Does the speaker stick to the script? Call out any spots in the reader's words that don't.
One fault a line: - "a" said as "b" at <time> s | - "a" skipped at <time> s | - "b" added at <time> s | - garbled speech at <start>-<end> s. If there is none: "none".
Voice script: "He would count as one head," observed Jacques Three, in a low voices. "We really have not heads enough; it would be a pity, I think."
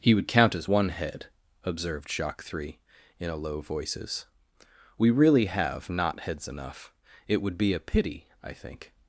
none